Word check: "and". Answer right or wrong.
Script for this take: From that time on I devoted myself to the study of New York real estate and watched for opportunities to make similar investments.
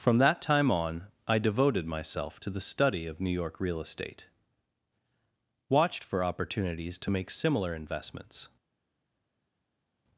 wrong